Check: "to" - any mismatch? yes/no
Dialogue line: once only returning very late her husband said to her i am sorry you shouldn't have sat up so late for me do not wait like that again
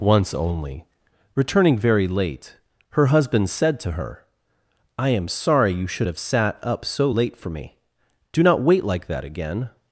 no